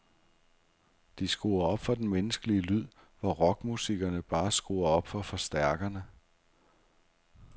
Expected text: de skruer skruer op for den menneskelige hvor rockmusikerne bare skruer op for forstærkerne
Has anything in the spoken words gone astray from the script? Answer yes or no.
yes